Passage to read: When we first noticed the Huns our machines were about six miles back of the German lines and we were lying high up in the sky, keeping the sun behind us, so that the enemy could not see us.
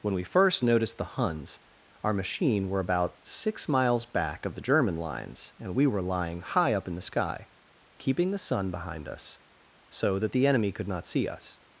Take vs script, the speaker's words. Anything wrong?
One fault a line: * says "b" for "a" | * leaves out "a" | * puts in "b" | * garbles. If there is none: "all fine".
* says "machine" for "machines"